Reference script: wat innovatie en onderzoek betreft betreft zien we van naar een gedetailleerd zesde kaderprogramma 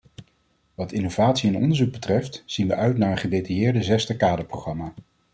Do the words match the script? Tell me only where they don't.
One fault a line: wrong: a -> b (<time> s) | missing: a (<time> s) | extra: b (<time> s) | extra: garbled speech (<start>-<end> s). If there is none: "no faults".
missing: betreft (2.4 s)
wrong: van -> uit (2.8 s)